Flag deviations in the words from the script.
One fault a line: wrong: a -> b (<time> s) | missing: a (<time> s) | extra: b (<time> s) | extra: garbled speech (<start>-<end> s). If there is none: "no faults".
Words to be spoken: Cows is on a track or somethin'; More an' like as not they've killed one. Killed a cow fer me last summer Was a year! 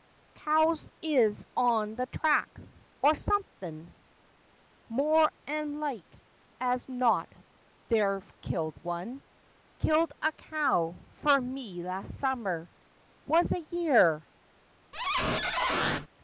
wrong: a -> the (1.9 s)